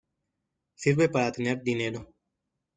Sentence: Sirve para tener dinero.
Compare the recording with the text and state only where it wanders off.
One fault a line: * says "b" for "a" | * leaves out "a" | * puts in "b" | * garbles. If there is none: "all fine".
all fine